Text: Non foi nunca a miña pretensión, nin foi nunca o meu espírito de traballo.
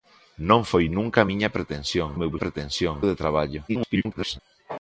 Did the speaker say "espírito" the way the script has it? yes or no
no